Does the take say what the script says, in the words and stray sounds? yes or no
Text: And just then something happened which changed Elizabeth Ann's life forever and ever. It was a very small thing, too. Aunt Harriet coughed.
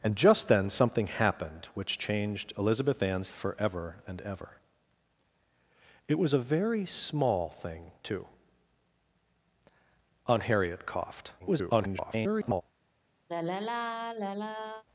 no